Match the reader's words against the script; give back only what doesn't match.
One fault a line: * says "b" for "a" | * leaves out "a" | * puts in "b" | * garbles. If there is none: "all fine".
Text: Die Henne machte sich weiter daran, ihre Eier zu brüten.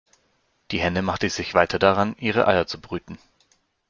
all fine